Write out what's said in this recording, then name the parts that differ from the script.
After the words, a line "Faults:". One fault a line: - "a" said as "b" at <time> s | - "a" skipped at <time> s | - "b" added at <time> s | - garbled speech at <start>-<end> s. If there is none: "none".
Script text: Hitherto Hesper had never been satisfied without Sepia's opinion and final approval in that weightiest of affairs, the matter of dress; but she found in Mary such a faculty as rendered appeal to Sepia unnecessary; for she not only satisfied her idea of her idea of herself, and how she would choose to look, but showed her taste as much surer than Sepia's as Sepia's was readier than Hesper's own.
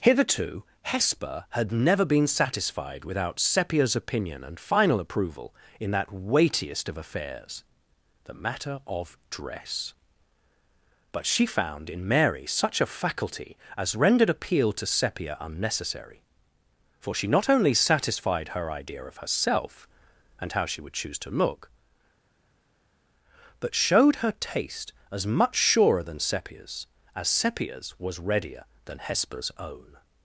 Hitherto Hesper had never been satisfied without Sepia's opinion and final approval in that weightiest of affairs, the matter of dress; but she found in Mary such a faculty as rendered appeal to Sepia unnecessary; for she not only satisfied her idea of herself, and how she would choose to look, but showed her taste as much surer than Sepia's as Sepia's was readier than Hesper's own.
Faults:
- "her idea of" skipped at 19.2 s